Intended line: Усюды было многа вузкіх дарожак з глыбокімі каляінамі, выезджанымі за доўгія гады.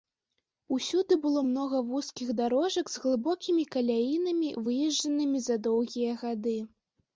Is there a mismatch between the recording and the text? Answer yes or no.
no